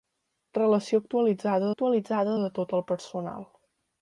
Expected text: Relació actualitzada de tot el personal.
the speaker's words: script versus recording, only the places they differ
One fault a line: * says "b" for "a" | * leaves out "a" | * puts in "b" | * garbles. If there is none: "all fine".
* puts in "actualitzada"